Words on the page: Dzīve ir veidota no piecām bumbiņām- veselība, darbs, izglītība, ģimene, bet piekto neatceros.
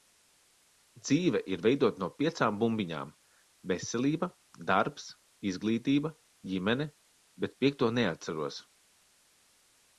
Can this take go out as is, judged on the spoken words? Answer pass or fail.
pass